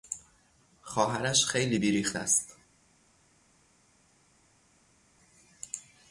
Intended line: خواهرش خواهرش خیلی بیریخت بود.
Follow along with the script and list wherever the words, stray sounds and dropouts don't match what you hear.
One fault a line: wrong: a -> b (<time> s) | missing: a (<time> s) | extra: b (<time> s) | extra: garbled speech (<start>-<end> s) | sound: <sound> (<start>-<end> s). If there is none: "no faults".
missing: خواهرش (1.4 s)
wrong: بود -> است (2.1 s)